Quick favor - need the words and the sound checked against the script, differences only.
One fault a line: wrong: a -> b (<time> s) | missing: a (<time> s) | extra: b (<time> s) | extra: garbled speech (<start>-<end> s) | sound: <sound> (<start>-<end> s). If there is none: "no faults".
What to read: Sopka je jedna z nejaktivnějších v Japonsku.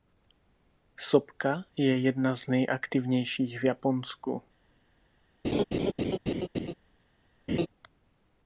sound: laugh (5.4-6.7 s)
sound: laugh (7.5-7.7 s)